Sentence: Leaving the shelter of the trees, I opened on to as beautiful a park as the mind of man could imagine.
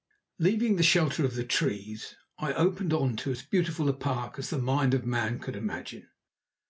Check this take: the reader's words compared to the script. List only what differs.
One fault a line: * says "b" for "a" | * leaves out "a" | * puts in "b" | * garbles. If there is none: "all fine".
all fine